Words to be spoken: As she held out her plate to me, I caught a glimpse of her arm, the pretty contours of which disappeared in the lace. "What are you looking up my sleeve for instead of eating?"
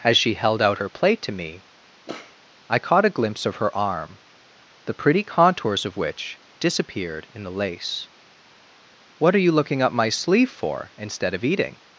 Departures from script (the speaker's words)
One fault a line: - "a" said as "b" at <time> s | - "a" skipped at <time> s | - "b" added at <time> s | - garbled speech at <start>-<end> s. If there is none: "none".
none